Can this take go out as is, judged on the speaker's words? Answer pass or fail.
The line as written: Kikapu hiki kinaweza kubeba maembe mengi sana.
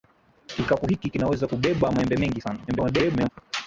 fail